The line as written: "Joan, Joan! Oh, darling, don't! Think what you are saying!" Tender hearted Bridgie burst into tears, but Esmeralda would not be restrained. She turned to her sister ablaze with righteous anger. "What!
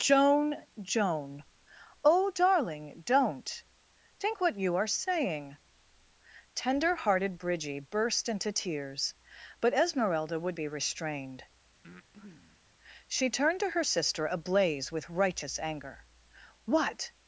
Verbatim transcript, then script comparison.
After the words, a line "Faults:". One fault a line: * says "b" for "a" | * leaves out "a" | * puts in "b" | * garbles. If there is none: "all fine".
"Joan, Joan! Oh, darling, don't! Think what you are saying!" Tender hearted Bridgie burst into tears, but Esmeralda would be restrained. She turned to her sister ablaze with righteous anger. "What!
Faults:
* leaves out "not"